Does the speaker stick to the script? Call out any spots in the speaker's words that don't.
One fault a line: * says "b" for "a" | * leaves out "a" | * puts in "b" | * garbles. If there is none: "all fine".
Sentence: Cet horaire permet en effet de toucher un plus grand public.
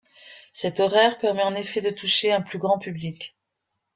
all fine